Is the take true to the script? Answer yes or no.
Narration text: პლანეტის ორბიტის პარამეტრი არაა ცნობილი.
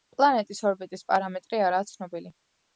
yes